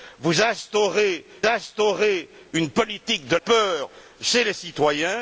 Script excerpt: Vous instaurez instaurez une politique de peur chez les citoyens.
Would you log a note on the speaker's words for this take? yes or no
no